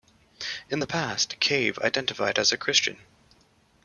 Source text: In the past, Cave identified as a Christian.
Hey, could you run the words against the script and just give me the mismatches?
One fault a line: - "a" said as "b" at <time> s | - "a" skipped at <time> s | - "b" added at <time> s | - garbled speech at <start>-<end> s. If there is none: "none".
none